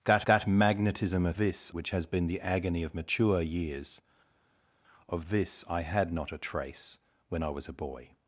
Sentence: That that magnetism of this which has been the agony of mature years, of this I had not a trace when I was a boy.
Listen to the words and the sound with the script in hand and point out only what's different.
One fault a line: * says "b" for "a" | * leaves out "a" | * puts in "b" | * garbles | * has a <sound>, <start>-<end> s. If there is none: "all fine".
all fine